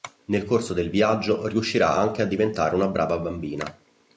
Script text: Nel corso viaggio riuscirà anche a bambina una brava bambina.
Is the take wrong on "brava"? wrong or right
right